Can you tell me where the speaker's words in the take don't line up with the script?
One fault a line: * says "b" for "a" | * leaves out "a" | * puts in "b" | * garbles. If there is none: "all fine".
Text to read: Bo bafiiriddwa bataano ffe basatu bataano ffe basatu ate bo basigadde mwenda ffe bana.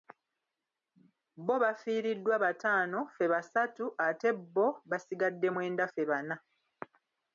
* leaves out "bataano ffe basatu"